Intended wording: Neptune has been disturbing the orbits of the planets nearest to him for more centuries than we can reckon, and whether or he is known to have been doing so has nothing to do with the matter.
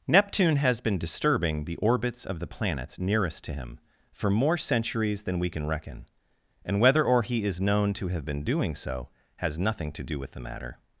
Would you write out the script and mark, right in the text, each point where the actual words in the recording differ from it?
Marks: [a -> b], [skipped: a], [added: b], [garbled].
Neptune has been disturbing the orbits of the planets nearest to him for more centuries than we can reckon, and whether or he is known to have been doing so has nothing to do with the matter.